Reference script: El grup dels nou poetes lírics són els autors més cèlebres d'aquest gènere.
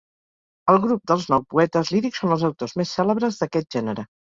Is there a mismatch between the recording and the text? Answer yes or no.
no